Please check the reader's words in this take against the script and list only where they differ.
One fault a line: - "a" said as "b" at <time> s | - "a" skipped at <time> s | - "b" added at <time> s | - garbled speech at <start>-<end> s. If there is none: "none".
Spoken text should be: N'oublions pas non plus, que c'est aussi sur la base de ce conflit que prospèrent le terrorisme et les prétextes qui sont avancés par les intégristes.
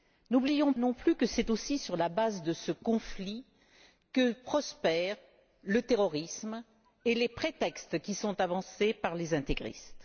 - "pas" skipped at 0.7 s